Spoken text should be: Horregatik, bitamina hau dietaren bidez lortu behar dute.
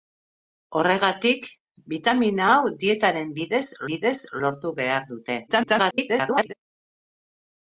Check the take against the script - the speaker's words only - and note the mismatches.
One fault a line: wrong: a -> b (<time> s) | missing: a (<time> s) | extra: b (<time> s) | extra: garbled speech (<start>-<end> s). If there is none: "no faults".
extra: bidez (3.9 s)
extra: garbled speech (5.5-6.5 s)